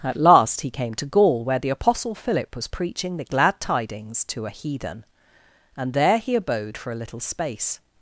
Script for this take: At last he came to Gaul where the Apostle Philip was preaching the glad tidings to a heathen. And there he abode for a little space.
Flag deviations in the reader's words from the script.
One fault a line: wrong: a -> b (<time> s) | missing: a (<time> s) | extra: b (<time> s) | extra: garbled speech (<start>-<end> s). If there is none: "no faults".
no faults